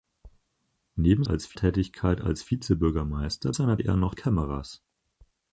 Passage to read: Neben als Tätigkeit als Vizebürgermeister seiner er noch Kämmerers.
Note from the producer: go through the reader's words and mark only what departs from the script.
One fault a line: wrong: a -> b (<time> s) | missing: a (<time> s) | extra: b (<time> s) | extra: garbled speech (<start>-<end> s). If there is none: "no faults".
no faults